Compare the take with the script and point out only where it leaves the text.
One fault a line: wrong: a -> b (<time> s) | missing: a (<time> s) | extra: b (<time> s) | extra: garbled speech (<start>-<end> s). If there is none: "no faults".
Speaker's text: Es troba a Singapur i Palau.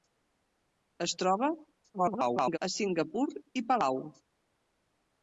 extra: garbled speech (1.9-2.6 s)